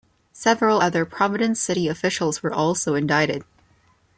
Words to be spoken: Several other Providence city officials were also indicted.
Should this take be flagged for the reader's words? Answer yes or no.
no